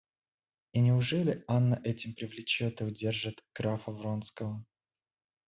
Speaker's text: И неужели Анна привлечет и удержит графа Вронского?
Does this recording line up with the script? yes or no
no